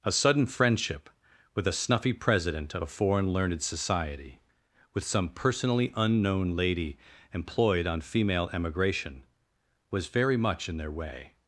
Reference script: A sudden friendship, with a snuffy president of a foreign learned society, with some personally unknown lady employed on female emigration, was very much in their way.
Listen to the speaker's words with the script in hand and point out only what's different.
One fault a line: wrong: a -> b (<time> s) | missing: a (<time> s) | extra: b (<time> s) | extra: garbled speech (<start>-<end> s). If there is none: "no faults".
no faults